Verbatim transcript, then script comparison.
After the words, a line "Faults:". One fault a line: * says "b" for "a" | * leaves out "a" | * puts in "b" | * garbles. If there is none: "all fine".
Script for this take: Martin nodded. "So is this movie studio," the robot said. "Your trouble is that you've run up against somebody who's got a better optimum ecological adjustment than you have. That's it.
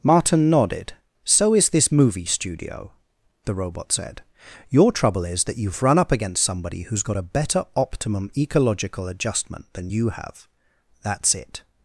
Martin nodded. "So is this movie studio," the robot said. "Your trouble is that you've run up against somebody who's got a better optimum ecological adjustment than you have. That's it.
Faults:
all fine